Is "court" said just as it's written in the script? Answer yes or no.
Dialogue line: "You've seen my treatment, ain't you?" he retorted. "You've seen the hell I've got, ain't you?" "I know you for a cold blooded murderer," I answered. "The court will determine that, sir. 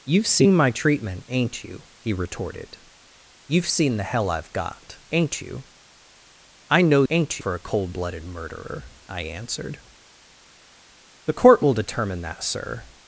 yes